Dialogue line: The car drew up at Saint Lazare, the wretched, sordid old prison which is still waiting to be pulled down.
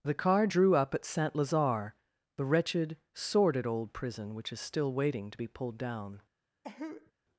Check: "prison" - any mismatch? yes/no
no